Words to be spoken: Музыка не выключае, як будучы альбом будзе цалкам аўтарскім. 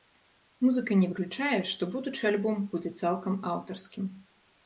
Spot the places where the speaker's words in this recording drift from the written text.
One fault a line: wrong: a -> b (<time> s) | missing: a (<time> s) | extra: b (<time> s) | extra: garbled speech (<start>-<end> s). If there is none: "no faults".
wrong: як -> што (1.7 s)